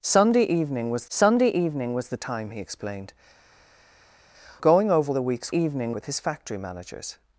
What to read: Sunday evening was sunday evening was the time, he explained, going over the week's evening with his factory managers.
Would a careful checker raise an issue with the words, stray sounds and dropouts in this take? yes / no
no